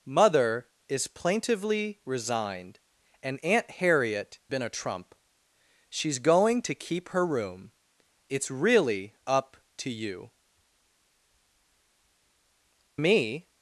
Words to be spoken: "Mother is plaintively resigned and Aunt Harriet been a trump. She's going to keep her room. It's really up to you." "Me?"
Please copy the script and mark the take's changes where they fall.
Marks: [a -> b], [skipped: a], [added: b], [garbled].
"Mother is plaintively resigned and Aunt Harriet been a trump. She's going to keep her room. It's really up to you." "Me?"